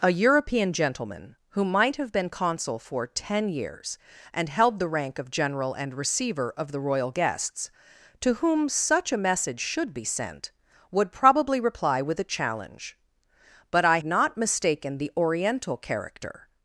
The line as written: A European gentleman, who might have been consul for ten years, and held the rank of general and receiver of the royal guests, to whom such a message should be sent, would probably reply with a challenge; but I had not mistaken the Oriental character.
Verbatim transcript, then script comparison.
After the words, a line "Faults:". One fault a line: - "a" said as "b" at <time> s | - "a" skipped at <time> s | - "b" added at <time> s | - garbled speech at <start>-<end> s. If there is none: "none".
A European gentleman, who might have been consul for ten years, and held the rank of general and receiver of the royal guests, to whom such a message should be sent, would probably reply with a challenge; but I not mistaken the Oriental character.
Faults:
- "had" skipped at 14.0 s